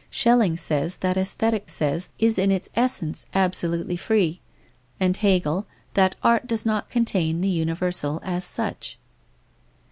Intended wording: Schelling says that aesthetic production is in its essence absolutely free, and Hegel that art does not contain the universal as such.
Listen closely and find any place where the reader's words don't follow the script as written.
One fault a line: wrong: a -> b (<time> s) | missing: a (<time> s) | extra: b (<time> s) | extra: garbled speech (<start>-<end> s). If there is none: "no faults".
wrong: production -> says (1.7 s)